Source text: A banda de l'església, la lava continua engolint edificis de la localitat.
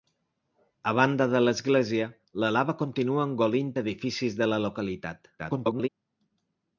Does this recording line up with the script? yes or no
no